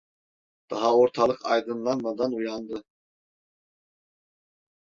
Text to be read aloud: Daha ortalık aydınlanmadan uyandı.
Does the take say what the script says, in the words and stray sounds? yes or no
yes